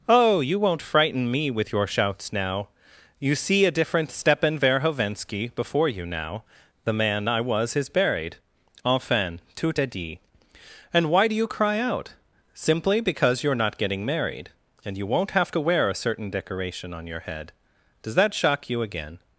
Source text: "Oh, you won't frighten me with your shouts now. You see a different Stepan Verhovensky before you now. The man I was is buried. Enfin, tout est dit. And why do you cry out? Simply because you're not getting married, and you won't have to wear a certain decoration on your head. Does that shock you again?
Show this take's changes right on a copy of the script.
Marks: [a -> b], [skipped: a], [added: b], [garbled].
"Oh, you won't frighten me with your shouts now. You see a different Stepan Verhovensky before you now. The man I was is buried. Enfin, tout est dit. And why do you cry out? Simply because you're not getting married, and you won't have to wear a certain decoration on your head. Does that shock you again?